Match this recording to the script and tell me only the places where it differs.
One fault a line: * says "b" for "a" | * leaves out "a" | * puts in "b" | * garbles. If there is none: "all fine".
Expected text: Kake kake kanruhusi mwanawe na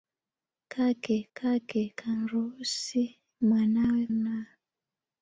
all fine